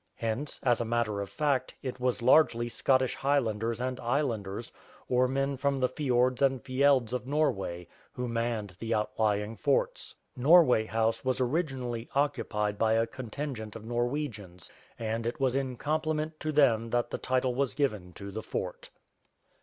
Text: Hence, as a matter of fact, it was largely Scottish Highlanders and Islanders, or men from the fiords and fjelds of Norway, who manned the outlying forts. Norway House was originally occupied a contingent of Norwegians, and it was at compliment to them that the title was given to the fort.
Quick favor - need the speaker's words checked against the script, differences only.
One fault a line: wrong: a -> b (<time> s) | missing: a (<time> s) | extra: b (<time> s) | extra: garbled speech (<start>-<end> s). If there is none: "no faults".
extra: by (12.8 s)
wrong: at -> in (15.5 s)